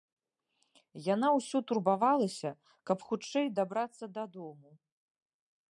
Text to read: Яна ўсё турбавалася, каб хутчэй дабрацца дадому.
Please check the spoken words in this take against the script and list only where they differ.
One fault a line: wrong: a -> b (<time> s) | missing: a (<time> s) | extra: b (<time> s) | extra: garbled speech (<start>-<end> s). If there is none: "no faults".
no faults